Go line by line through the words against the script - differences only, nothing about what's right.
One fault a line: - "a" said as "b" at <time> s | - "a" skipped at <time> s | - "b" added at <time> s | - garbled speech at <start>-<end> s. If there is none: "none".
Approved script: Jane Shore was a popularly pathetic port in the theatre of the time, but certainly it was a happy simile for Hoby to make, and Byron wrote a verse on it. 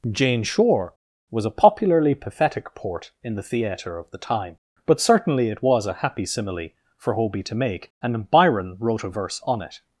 none